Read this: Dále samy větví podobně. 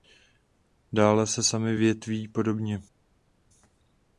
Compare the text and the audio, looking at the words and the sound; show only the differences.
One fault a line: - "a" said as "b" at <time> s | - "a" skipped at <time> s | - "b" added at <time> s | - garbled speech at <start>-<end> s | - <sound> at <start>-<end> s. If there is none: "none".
- "se" added at 1.3 s